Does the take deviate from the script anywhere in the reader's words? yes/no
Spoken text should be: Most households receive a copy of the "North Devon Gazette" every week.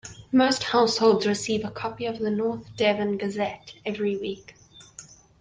no